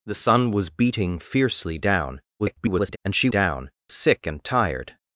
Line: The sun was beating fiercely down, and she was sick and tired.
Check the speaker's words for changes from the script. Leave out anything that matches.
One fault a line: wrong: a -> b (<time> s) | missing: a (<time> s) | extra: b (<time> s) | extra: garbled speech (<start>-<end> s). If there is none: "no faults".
extra: garbled speech (2.4-3.0 s)
wrong: was -> down (3.3 s)